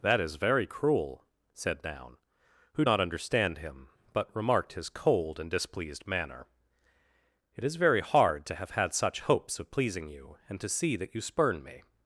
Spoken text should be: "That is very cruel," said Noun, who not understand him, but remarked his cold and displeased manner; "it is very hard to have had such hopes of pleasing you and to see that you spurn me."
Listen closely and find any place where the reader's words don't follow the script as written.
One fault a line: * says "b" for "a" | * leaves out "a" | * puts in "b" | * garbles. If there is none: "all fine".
all fine